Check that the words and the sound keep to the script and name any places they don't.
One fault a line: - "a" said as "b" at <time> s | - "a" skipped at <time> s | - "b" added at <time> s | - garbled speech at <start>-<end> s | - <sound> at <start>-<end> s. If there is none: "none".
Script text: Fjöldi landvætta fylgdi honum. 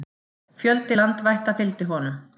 none